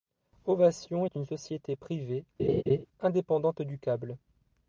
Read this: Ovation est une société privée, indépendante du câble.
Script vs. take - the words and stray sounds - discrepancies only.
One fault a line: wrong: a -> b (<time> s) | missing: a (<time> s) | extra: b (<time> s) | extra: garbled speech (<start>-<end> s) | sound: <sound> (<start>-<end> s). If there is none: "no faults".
sound: laugh (2.4-2.9 s)